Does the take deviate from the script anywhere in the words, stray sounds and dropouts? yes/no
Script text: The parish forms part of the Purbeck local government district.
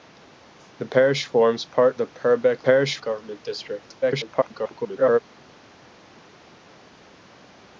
yes